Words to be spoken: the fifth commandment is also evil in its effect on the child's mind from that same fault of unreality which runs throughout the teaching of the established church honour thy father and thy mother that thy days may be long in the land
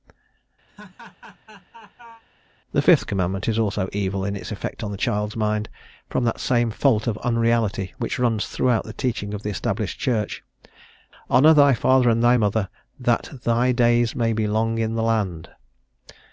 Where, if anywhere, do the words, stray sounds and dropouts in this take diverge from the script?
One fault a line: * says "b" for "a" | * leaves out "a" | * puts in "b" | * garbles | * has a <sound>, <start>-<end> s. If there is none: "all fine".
* has a laugh, 0.7-2.2 s